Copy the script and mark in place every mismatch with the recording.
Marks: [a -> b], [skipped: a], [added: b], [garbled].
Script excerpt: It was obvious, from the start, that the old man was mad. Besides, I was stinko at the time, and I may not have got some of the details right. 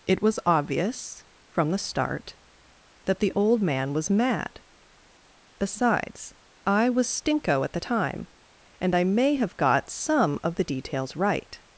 It was obvious, from the start, that the old man was mad. Besides, I was stinko at the time, and I may [skipped: not] have got some of the details right.